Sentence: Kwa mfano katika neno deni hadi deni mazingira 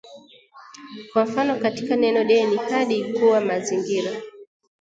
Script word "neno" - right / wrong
right